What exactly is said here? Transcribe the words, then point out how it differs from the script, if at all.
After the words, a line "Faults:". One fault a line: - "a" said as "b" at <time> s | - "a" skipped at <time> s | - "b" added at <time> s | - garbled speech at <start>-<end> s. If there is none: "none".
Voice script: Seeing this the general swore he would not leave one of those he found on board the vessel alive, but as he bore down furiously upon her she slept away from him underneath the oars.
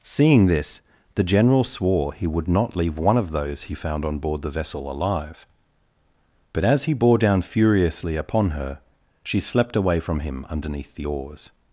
Seeing this the general swore he would not leave one of those he found on board the vessel alive, but as he bore down furiously upon her she slept away from him underneath the oars.
Faults:
none